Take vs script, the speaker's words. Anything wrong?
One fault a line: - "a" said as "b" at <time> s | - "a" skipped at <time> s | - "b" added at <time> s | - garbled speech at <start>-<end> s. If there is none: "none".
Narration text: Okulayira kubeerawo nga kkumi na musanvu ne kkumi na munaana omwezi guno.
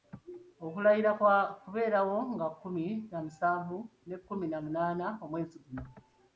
- "kwa" added at 1.2 s